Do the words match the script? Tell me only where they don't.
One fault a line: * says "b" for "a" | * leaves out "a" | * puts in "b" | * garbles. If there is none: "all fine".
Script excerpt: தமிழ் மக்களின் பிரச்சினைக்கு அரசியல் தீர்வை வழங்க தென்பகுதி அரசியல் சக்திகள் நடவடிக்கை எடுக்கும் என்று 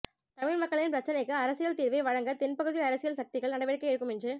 all fine